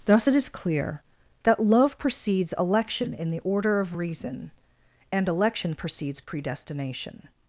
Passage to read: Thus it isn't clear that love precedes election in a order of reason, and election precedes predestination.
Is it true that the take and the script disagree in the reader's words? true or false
true